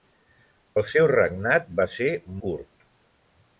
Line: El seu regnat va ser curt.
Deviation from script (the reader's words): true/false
false